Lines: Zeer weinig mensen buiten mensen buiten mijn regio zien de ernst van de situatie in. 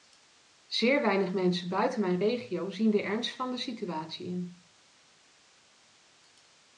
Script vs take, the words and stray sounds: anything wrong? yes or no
yes